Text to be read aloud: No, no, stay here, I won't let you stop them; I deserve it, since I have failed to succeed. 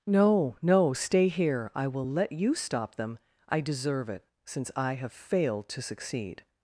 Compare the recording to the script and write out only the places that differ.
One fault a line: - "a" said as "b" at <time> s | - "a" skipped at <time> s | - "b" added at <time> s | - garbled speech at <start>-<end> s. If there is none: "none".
- "won't" said as "will" at 1.9 s